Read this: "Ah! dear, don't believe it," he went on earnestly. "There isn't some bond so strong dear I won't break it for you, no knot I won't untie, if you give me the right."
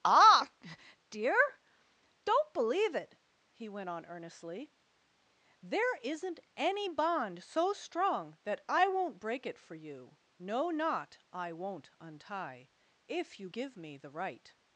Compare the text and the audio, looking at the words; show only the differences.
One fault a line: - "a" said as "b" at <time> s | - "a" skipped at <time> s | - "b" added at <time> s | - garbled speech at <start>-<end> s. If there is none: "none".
- "some" said as "any" at 6.5 s
- "dear" said as "that" at 8.4 s